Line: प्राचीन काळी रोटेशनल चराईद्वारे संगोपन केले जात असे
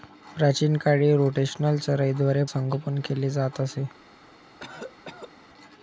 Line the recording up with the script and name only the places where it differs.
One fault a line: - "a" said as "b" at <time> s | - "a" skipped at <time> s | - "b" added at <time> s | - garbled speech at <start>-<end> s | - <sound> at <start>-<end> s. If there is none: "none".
- cough at 4.6-5.3 s